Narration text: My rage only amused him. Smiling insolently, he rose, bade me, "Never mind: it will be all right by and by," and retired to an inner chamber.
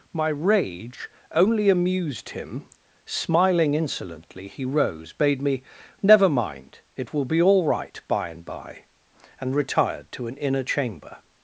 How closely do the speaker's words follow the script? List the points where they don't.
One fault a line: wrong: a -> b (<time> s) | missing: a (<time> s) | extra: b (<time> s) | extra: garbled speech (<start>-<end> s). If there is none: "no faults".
no faults